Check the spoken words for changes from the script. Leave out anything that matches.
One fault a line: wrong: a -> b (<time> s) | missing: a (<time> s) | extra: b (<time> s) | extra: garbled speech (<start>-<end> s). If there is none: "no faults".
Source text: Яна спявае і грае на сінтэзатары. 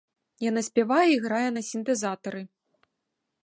no faults